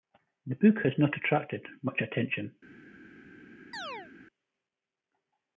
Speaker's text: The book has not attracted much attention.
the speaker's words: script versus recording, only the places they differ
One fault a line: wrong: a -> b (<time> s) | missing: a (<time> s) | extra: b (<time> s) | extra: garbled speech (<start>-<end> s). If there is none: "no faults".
no faults